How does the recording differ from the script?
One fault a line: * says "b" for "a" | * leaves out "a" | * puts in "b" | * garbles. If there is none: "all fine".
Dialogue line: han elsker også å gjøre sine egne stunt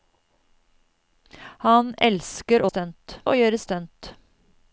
* says "stunt" for "også"
* leaves out "sine egne"